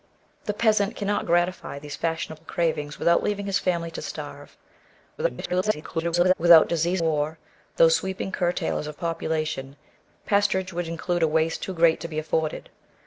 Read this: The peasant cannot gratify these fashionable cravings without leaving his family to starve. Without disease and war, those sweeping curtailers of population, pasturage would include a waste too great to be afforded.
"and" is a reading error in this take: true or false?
true